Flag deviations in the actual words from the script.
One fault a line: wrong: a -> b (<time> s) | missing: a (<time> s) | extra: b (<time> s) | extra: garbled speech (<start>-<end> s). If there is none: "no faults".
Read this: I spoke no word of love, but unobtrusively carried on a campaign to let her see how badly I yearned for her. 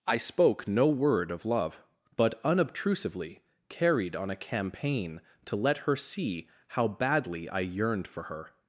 no faults